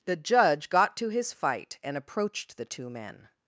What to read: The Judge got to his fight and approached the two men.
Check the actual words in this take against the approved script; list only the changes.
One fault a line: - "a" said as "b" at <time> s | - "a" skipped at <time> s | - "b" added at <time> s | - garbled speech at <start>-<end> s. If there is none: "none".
none